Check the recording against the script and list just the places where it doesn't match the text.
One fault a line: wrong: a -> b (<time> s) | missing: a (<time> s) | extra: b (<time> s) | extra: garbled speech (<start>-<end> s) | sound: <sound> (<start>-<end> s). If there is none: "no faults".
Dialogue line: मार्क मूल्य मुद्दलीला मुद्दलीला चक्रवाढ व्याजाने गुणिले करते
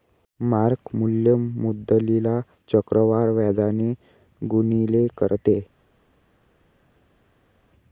missing: मुद्दलीला (2.4 s)